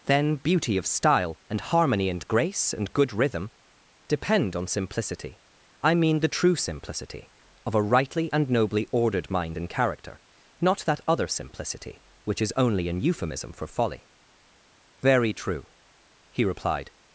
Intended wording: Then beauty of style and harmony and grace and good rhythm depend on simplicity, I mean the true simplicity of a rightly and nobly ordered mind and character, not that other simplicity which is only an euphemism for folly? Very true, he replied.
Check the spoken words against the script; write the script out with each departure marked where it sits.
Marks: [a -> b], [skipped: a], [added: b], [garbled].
Then beauty of style and harmony and grace and good rhythm depend on simplicity, I mean the true simplicity of a rightly and nobly ordered mind and character, not that other simplicity which is only an euphemism for folly? Very true, he replied.